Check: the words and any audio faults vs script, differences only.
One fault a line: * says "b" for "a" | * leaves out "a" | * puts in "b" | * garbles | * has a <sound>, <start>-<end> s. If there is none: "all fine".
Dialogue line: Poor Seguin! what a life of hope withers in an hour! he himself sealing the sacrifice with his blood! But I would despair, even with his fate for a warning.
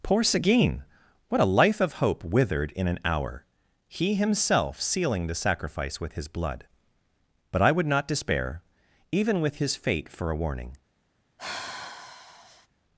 * says "withered" for "withers"
* puts in "not"
* has a sigh, 11.4-12.7 s